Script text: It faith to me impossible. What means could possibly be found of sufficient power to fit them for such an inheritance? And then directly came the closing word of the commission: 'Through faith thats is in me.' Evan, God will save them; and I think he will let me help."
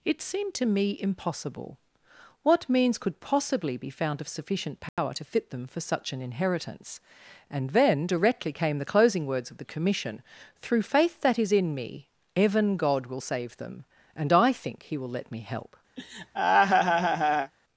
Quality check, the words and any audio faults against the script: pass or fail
fail